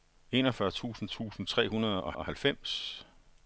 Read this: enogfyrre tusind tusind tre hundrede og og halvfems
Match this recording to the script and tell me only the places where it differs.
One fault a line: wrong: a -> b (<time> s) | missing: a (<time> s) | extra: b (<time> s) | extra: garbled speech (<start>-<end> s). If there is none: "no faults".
no faults